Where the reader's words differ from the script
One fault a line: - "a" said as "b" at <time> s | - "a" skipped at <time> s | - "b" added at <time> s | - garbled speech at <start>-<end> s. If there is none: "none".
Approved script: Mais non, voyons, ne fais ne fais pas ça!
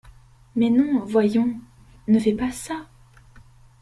- "ne fais" skipped at 2.3 s